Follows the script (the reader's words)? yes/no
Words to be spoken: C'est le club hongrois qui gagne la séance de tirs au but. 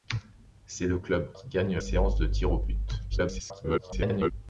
no